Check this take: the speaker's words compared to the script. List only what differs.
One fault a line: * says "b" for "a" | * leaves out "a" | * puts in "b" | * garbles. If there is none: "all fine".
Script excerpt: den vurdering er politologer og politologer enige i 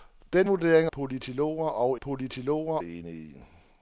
all fine